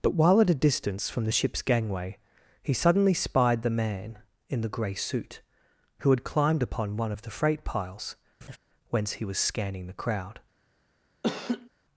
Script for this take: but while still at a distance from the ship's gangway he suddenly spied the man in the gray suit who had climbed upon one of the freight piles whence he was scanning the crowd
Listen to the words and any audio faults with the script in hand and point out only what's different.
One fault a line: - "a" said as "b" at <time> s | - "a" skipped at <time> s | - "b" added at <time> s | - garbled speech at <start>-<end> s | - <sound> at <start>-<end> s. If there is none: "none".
- "still" skipped at 0.4 s
- laugh at 8.4-8.6 s
- laugh at 11.2-11.7 s